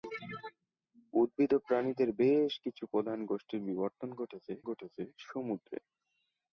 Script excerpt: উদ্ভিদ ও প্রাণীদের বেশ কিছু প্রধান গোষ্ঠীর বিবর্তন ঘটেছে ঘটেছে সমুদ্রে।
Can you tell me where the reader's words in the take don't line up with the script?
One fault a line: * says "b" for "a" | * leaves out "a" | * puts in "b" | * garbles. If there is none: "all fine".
all fine